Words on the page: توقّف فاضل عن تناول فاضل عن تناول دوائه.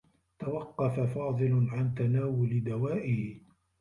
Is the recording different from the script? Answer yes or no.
yes